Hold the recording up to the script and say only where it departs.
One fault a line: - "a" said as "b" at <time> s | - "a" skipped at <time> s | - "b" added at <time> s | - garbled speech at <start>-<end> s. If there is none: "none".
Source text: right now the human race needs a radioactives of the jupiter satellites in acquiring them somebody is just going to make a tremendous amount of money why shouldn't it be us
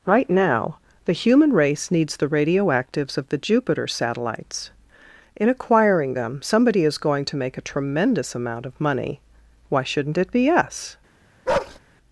- "a" said as "the" at 2.2 s
- "just" skipped at 7.0 s